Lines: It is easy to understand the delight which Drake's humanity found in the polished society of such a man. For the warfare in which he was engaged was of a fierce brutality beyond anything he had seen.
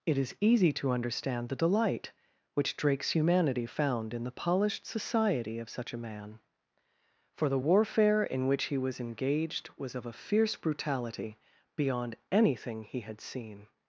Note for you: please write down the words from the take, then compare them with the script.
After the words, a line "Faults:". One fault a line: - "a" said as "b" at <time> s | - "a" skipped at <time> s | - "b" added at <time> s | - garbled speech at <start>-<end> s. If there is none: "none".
It is easy to understand the delight which Drake's humanity found in the polished society of such a man. For the warfare in which he was engaged was of a fierce brutality beyond anything he had seen.
Faults:
none